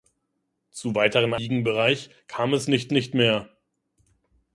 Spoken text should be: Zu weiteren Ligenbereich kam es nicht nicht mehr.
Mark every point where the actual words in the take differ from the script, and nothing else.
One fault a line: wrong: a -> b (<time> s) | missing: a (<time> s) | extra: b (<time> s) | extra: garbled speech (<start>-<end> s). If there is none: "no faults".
no faults